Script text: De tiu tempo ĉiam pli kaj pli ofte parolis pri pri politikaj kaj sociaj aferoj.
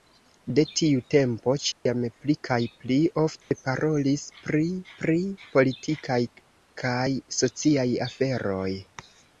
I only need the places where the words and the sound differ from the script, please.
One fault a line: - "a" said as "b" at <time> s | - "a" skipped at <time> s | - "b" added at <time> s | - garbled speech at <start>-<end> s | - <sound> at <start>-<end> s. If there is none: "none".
- dropout at 1.7-1.9 s
- dropout at 3.4-3.5 s